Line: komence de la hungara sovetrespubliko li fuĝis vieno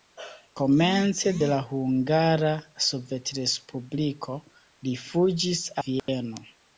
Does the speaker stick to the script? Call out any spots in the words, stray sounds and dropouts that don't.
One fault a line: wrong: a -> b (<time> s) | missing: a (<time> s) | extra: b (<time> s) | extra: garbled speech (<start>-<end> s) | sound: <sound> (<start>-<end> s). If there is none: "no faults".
sound: dropout (6.0-6.1 s)